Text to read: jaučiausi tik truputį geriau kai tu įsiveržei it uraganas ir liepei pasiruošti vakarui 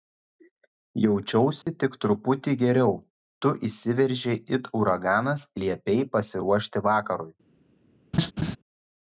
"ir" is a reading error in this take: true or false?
true